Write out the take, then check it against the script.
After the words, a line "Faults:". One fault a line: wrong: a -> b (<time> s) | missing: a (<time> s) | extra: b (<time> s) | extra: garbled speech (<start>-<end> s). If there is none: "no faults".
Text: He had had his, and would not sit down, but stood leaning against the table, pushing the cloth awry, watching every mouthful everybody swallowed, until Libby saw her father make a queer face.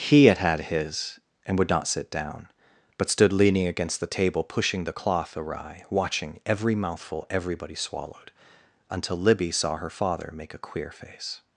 He had had his, and would not sit down, but stood leaning against the table, pushing the cloth awry, watching every mouthful everybody swallowed, until Libby saw her father make a queer face.
Faults:
no faults